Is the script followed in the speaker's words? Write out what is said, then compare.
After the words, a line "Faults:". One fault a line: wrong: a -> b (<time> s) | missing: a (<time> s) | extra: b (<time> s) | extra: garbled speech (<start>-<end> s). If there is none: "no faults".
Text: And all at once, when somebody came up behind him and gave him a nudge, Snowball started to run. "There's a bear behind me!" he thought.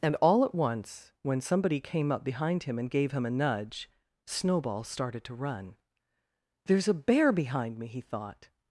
And all at once, when somebody came up behind him and gave him a nudge, Snowball started to run. "There's a bear behind me!" he thought.
Faults:
no faults